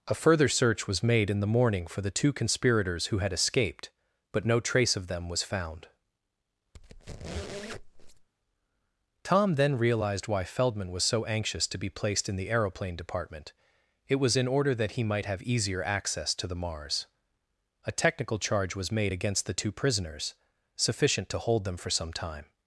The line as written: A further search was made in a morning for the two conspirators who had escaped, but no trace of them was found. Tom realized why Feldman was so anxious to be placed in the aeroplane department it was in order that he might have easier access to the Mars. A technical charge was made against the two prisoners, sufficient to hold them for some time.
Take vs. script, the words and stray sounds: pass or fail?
fail